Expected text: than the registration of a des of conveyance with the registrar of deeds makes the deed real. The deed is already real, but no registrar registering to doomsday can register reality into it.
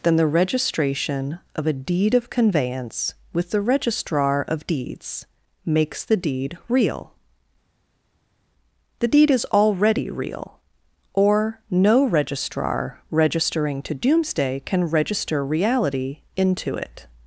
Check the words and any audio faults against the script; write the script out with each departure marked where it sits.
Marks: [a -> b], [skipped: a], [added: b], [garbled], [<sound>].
than the registration of a [des -> deed] of conveyance with the registrar of deeds makes the deed real. The deed is already real, [but -> or] no registrar registering to doomsday can register reality into it.